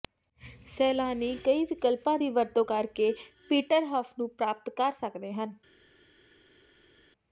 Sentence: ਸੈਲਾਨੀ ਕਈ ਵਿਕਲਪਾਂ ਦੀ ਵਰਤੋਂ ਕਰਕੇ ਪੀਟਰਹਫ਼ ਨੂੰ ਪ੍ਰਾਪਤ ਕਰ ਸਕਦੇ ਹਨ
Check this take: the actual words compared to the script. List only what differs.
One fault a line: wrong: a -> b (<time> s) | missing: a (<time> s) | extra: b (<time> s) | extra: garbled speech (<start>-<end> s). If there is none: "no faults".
no faults